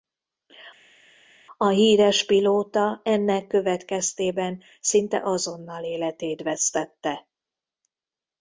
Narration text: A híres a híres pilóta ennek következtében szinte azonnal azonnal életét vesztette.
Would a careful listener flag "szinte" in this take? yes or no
no